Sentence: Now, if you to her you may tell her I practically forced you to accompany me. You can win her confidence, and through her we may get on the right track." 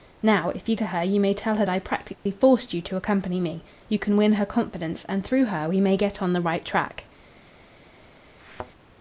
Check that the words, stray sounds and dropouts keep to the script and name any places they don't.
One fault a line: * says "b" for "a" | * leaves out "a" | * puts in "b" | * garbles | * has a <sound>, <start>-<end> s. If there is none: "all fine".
* has a dropout, 2.1-2.3 s
* has a thud, 8.4-8.7 s